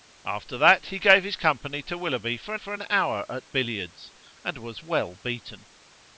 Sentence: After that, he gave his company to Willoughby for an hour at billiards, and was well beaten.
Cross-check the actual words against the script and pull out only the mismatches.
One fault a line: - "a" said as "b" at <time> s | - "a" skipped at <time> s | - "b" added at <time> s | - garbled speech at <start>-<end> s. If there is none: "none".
- "for" added at 2.6 s